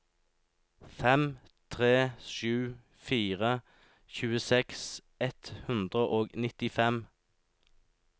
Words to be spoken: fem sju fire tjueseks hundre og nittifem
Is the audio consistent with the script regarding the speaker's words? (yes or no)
no